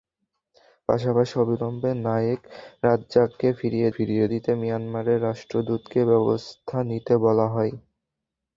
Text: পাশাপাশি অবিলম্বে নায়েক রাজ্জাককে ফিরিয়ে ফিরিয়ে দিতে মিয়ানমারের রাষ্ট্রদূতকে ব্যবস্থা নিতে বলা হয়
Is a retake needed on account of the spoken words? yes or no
no